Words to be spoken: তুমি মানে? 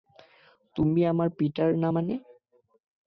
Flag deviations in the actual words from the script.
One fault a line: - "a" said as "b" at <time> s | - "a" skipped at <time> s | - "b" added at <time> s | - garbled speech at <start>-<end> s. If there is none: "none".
- "আমার পিটার না" added at 1.1 s